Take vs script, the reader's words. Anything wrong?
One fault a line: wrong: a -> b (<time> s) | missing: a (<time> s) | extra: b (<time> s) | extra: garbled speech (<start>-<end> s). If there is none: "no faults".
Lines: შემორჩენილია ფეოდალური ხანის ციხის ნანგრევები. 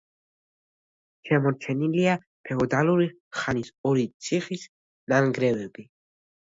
extra: ორი (3.9 s)